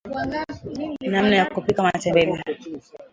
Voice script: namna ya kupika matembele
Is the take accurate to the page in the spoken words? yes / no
yes